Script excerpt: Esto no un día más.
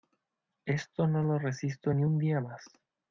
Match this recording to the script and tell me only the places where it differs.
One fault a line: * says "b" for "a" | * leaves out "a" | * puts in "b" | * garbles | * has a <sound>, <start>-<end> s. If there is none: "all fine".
* puts in "lo resisto ni"